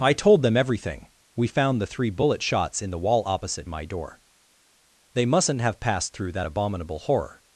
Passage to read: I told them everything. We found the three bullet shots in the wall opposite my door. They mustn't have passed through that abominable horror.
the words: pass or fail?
pass